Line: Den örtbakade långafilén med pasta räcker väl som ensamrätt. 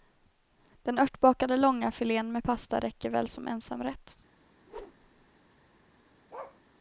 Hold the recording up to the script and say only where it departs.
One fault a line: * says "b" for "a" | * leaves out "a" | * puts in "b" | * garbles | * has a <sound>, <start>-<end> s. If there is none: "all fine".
* has a whoosh, 4.6-5.3 s
* has a bark, 6.3-6.6 s